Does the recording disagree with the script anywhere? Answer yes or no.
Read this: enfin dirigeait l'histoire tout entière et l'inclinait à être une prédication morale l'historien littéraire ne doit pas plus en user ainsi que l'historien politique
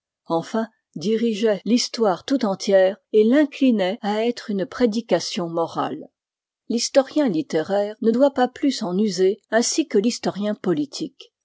no